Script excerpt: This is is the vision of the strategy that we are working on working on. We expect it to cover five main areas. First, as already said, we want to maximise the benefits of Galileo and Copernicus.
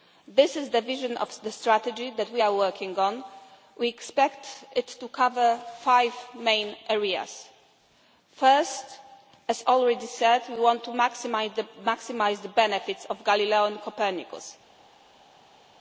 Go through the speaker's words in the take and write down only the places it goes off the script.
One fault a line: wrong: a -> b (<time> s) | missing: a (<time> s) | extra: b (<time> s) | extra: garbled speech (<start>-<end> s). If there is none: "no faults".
missing: is (0.7 s)
missing: working on (3.2 s)